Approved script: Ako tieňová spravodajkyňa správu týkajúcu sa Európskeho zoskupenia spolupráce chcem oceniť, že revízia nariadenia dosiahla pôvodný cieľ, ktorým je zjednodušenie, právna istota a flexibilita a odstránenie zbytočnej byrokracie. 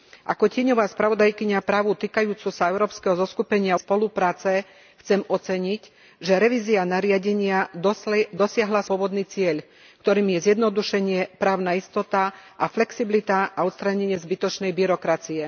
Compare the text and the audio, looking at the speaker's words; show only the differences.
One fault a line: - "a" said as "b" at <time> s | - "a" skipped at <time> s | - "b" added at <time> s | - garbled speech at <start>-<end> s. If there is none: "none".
none